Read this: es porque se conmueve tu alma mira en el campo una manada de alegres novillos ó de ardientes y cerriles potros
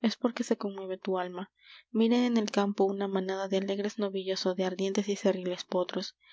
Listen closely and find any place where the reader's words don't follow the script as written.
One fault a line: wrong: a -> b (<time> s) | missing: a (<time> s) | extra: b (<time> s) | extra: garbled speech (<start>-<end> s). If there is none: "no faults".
no faults